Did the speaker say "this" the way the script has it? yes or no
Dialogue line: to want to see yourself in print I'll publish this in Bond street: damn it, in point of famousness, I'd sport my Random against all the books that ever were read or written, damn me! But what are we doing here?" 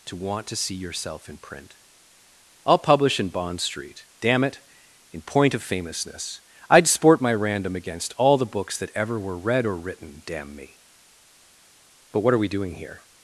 no